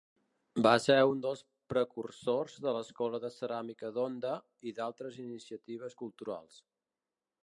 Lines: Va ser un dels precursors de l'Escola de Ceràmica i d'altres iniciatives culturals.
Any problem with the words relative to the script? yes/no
yes